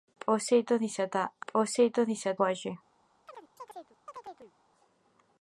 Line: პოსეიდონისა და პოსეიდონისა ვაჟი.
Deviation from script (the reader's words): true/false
false